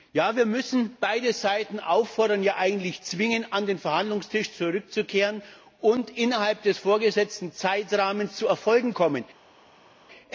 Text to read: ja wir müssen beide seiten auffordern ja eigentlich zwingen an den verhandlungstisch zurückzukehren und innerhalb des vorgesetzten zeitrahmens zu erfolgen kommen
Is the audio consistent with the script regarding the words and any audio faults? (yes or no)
yes